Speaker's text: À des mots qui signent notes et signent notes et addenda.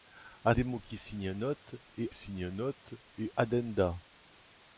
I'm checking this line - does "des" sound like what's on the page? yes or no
yes